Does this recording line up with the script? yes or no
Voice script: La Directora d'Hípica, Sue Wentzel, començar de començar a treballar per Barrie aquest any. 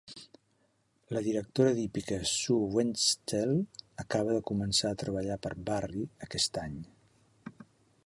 no